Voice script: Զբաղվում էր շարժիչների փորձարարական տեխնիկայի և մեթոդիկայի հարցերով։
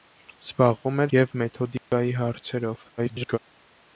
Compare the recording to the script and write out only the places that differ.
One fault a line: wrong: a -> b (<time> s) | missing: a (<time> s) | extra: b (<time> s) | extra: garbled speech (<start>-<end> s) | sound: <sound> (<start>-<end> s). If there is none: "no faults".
missing: շարժիչների փորձարարական տեխնիկայի (1.1 s)
sound: dropout (1.8-1.9 s)
extra: garbled speech (3.0-3.4 s)